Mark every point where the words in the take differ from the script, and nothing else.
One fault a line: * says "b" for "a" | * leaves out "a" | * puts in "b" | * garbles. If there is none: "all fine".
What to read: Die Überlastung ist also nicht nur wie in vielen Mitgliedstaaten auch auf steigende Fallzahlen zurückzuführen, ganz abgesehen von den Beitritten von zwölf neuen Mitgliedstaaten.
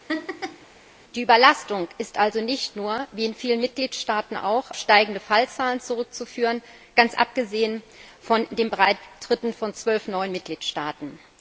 * leaves out "auf"